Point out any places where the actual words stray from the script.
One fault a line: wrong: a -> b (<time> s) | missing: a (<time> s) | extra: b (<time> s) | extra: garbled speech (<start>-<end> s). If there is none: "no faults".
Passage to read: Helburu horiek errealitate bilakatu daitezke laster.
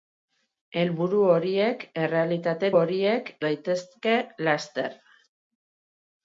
wrong: bilakatu -> horiek (2.8 s)